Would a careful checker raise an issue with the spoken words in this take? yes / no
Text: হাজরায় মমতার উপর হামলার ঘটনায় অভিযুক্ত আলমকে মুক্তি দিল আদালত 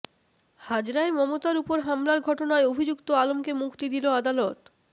no